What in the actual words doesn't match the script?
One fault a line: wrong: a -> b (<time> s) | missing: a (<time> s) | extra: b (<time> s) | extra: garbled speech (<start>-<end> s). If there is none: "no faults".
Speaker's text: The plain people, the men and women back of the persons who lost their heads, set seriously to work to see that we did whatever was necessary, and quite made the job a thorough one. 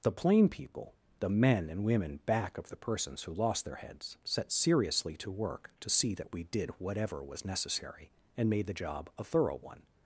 missing: quite (8.5 s)